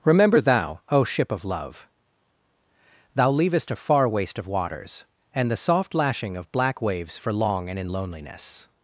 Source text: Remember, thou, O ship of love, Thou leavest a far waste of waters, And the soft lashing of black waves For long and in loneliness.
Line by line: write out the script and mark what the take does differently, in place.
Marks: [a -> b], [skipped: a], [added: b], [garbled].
Remember, thou, O ship of love, Thou leavest a far waste of waters, And the soft lashing of black waves For long and in loneliness.